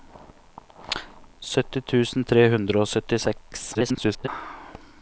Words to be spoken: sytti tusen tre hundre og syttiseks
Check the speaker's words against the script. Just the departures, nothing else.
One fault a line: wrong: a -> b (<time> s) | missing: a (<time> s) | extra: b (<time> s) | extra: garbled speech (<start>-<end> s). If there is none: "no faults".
extra: garbled speech (3.7-4.3 s)